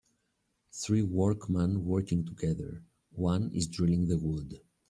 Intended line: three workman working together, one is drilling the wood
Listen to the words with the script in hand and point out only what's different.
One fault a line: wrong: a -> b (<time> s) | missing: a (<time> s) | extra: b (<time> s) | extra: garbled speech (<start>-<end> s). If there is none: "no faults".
no faults